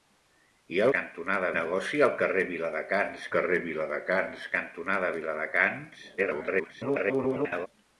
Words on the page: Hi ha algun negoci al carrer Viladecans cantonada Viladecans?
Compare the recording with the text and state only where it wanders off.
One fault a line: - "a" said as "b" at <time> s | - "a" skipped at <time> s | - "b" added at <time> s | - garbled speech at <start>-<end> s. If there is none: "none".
- "algun" said as "cantonada" at 1.0 s
- "carrer Viladecans" added at 3.4 s
- garbled speech at 6.2-7.7 s